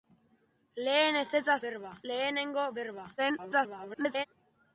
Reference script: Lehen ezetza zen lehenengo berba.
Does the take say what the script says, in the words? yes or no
no